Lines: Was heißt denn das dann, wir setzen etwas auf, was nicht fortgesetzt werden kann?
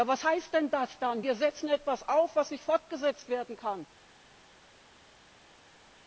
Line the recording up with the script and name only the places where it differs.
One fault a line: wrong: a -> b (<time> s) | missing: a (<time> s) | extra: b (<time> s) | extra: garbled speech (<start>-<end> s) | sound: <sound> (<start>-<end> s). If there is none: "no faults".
no faults